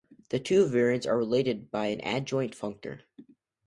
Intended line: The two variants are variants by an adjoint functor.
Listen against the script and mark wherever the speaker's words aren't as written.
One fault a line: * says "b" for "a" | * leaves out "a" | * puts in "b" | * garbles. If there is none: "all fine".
* says "related" for "variants"